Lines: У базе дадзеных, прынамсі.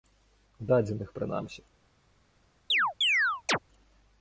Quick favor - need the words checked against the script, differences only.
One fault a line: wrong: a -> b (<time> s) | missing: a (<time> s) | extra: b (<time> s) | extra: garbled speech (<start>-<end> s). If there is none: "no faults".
missing: базе (0.7 s)